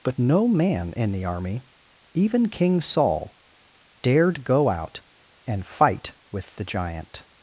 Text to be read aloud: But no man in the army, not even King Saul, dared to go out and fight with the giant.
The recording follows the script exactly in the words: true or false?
false